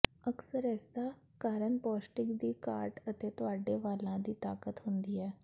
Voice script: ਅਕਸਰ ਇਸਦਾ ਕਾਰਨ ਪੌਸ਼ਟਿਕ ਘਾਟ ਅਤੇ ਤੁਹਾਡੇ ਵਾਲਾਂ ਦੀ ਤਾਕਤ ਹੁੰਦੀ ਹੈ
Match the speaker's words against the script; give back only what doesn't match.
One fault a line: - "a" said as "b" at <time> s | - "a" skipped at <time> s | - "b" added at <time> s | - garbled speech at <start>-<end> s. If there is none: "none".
- "ਦੀ" added at 2.4 s